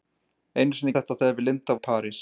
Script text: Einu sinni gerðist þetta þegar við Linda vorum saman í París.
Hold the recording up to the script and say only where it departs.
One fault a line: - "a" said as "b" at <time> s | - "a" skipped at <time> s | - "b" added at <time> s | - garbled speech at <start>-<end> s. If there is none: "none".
- "gerðist" skipped at 0.9 s
- "vorum saman" skipped at 1.8 s